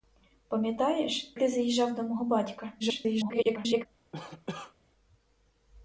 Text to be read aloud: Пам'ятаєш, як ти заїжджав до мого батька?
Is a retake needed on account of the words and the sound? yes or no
yes